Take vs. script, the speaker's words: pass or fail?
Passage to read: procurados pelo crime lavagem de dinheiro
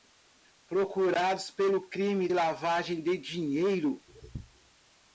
pass